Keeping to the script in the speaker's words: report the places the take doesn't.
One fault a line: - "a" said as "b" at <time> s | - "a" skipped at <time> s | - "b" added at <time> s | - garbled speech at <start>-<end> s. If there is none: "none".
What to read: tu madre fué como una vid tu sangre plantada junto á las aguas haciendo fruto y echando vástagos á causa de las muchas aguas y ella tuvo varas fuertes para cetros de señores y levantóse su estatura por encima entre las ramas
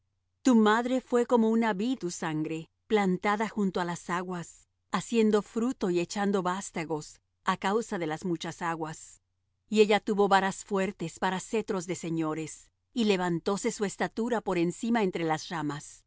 none